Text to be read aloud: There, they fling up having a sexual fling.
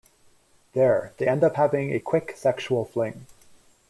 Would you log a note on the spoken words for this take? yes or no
yes